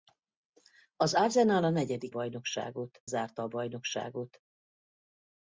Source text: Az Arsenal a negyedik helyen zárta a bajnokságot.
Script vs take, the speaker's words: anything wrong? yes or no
yes